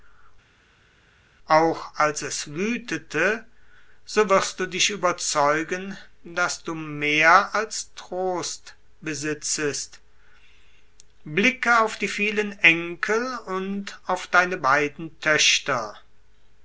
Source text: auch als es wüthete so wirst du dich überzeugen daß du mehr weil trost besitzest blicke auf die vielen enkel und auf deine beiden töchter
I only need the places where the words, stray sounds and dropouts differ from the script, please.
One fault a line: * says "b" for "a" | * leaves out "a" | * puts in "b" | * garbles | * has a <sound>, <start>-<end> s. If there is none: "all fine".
* says "als" for "weil"